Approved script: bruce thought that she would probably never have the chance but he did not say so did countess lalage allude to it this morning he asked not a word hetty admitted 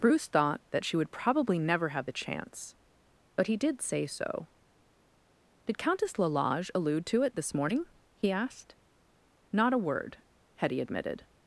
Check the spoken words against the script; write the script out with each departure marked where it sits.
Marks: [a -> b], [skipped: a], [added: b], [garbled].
bruce thought that she would probably never have the chance but he did [skipped: not] say so did countess lalage allude to it this morning he asked not a word hetty admitted